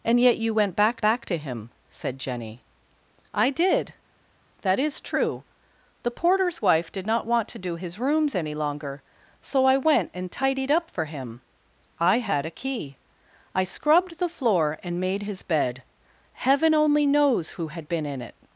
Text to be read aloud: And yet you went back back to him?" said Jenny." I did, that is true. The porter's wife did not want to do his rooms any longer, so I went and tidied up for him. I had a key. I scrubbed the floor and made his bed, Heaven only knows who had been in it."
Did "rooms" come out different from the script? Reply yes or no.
no